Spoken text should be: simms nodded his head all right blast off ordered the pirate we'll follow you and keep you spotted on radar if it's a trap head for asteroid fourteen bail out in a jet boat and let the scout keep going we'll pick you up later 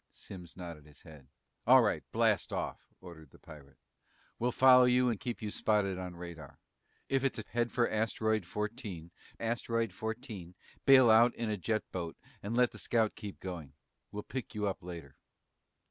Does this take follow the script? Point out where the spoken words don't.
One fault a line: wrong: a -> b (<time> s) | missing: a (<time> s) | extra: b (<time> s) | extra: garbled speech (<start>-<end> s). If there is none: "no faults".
missing: trap (7.4 s)
extra: asteroid fourteen (9.4 s)